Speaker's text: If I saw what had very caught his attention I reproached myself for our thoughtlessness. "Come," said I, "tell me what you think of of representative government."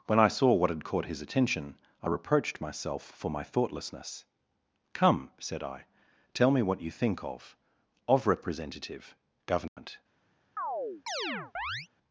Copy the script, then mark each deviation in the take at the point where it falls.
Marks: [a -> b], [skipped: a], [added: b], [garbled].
[If -> When] I saw what had [skipped: very] caught his attention I reproached myself for [our -> my] thoughtlessness. "Come," said I, "tell me what you think of of representative government."